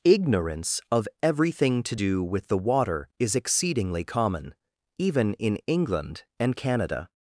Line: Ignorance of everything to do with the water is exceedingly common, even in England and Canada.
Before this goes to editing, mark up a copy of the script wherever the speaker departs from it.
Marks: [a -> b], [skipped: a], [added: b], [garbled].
Ignorance of everything to do with the water is exceedingly common, even in England and Canada.